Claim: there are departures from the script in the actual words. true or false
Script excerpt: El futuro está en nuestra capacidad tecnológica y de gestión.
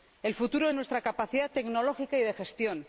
true